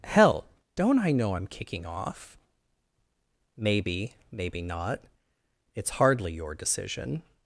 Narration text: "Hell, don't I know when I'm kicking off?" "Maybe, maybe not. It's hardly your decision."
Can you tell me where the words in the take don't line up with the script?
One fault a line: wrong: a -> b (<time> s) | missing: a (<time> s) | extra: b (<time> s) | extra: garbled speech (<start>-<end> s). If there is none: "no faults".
missing: when (1.4 s)